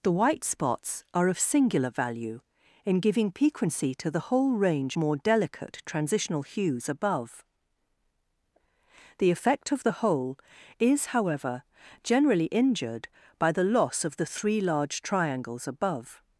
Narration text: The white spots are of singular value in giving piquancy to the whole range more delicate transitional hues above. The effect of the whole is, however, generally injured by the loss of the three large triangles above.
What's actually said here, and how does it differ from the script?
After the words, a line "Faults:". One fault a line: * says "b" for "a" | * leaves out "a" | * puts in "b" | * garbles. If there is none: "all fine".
The white spots are of singular value in giving piquancy to the whole range more delicate transitional hues above. The effect of the whole is, however, generally injured by the loss of the three large triangles above.
Faults:
all fine